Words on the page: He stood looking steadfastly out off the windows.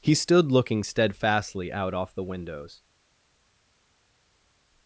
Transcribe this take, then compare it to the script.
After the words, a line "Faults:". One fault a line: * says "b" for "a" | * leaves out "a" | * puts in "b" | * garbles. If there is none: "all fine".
He stood looking steadfastly out off the windows.
Faults:
all fine